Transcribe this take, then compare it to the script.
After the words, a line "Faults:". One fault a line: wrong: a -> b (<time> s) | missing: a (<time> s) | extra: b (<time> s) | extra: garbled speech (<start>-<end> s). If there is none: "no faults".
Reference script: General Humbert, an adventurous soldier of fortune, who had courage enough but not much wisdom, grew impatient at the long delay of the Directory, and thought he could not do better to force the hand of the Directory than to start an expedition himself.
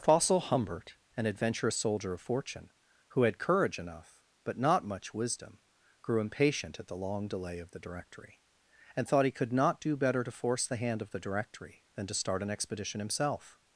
Fossil Humbert, an adventurous soldier of fortune, who had courage enough but not much wisdom, grew impatient at the long delay of the Directory, and thought he could not do better to force the hand of the Directory than to start an expedition himself.
Faults:
wrong: General -> Fossil (0.0 s)